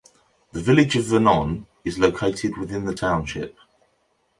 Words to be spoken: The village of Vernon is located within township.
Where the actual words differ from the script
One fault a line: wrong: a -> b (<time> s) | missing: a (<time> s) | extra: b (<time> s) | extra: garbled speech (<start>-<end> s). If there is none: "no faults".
extra: the (2.9 s)